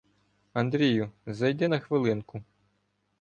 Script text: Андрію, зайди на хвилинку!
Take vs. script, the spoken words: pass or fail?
pass